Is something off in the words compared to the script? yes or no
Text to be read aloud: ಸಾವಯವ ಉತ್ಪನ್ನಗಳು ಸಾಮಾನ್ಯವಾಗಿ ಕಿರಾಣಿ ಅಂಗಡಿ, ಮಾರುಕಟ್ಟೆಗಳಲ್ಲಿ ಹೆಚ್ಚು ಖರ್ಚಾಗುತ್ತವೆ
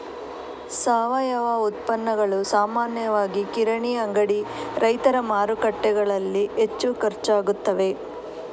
yes